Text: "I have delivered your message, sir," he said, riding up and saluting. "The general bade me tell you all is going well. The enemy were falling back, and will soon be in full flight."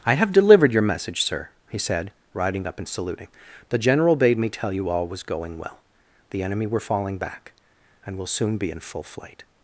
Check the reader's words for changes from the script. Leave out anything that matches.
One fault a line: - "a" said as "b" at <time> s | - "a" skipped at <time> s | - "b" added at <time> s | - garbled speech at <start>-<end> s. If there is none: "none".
- "is" said as "was" at 5.1 s